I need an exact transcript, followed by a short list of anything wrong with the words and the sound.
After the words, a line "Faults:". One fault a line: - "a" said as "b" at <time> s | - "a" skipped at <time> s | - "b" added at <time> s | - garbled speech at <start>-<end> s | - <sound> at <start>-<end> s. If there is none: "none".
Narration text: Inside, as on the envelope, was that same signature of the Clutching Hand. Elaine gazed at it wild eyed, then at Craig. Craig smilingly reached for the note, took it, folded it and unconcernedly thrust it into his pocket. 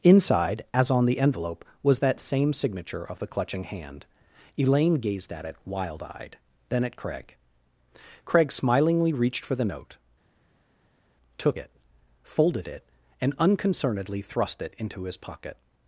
Inside, as on the envelope, was that same signature of the Clutching Hand. Elaine gazed at it wild eyed, then at Craig. Craig smilingly reached for the note, took it, folded it and unconcernedly thrust it into his pocket.
Faults:
none